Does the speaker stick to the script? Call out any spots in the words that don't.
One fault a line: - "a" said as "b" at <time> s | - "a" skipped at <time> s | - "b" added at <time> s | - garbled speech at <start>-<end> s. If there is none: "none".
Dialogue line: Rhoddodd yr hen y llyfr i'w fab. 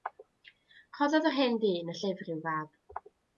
- "ddyn" added at 1.6 s